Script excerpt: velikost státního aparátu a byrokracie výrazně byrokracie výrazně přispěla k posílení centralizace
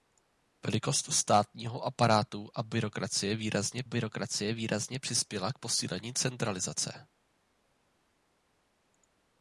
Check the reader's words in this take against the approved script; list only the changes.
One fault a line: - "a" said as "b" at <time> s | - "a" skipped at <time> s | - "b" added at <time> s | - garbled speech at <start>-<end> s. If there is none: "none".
none